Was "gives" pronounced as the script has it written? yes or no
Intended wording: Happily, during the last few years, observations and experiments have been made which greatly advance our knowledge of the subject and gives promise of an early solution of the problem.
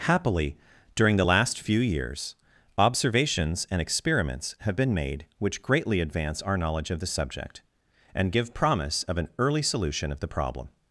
no